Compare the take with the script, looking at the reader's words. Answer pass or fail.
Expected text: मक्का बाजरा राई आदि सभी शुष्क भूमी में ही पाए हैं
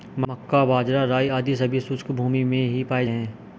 pass